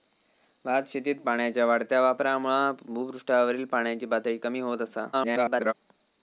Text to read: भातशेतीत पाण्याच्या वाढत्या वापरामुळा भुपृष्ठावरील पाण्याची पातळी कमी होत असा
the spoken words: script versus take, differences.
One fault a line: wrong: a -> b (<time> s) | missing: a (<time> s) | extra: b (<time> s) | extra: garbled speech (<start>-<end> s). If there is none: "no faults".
extra: garbled speech (5.1-5.7 s)